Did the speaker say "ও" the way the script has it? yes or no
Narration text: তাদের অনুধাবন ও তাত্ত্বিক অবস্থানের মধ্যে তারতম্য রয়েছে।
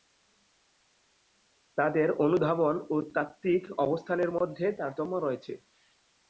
yes